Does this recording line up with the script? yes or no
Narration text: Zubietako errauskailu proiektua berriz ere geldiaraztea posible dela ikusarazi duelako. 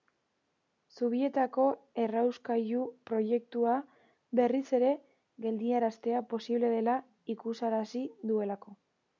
yes